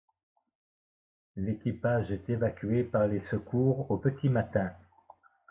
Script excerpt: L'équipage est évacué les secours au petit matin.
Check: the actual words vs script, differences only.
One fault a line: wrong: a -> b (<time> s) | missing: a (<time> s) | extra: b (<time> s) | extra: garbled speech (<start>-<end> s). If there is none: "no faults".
extra: par (2.8 s)